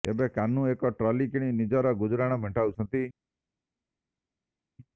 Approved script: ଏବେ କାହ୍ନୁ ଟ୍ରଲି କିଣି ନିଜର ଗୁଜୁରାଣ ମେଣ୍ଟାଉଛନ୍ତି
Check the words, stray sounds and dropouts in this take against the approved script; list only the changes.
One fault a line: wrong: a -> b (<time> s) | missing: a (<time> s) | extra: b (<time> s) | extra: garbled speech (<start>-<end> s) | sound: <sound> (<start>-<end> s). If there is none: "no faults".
extra: ଏକ (0.7 s)